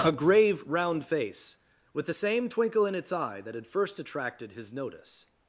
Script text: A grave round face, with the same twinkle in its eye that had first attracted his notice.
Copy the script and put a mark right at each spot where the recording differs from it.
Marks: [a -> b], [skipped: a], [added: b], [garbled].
A grave round face, with the same twinkle in its eye that had first attracted his notice.